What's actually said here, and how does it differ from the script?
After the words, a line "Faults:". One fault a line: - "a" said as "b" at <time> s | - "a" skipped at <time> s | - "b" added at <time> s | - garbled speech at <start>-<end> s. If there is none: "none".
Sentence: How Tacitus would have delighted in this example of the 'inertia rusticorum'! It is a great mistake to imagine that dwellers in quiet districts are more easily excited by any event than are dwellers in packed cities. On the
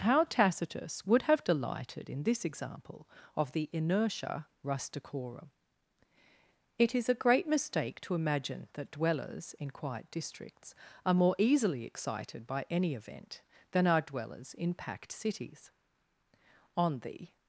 How Tacitus would have delighted in this example of the 'inertia rusticorum'! It is a great mistake to imagine that dwellers in quiet districts are more easily excited by any event than are dwellers in packed cities. On the
Faults:
none